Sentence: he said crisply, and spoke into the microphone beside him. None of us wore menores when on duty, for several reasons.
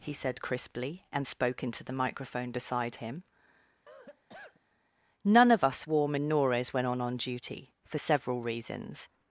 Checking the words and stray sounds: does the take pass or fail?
fail